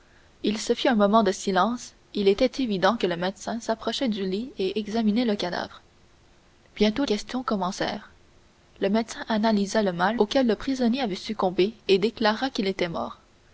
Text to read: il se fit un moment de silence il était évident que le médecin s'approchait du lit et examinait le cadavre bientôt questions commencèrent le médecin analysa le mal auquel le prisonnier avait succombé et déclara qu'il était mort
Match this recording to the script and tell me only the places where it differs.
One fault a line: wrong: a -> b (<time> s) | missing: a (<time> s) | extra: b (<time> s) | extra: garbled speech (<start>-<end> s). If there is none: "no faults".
no faults